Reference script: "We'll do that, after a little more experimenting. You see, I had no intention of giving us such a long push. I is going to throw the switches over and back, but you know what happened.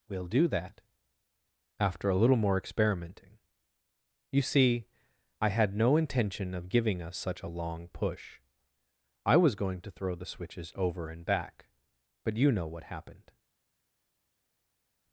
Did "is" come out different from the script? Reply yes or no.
yes